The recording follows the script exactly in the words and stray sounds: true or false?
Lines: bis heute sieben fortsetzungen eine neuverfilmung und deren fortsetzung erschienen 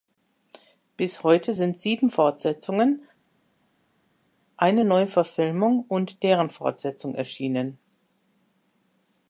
false